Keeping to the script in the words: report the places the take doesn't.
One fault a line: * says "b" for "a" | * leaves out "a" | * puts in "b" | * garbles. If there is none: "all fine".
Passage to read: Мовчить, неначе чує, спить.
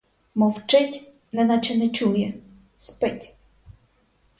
* puts in "не"